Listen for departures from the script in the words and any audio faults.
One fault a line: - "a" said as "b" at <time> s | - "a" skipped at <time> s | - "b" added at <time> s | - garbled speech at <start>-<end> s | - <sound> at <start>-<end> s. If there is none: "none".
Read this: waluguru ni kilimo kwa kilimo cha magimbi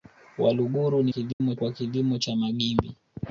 - dropout at 1.3-1.4 s